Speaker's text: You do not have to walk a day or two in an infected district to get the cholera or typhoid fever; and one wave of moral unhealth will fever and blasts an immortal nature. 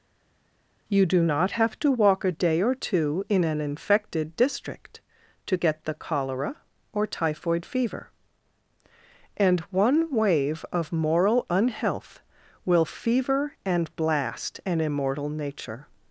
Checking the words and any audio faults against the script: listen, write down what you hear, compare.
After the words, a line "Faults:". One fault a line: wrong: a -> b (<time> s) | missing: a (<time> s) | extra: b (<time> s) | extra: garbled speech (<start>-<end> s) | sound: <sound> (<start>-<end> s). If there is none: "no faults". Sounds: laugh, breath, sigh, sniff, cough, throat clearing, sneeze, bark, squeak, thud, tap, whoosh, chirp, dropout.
You do not have to walk a day or two in an infected district to get the cholera or typhoid fever; and one wave of moral unhealth will fever and blast an immortal nature.
Faults:
wrong: blasts -> blast (14.0 s)